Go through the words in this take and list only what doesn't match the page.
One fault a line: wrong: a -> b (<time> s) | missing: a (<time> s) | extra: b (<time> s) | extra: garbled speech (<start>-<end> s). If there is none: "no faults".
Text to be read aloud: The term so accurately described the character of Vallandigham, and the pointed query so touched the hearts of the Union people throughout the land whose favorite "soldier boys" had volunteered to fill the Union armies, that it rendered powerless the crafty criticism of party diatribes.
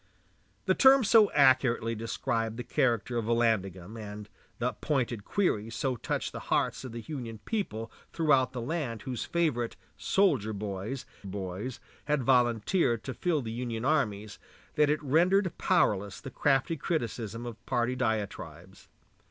extra: boys (11.3 s)